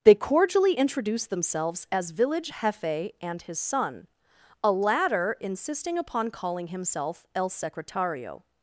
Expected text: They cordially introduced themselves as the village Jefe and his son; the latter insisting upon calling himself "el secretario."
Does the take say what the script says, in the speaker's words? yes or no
no